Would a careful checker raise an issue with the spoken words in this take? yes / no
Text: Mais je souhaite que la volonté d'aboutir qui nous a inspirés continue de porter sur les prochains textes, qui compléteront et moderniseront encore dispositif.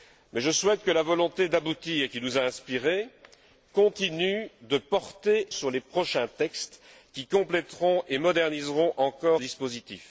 no